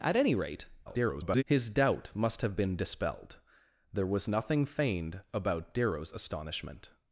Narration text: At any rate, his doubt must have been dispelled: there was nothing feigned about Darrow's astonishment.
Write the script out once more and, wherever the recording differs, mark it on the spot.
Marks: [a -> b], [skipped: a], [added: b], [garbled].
At any rate, [garbled] his doubt must have been dispelled: there was nothing feigned about Darrow's astonishment.